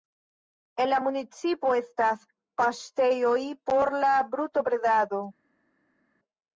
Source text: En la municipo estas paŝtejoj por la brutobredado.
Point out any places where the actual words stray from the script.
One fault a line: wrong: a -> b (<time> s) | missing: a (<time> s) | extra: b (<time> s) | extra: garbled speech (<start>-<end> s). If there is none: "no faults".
no faults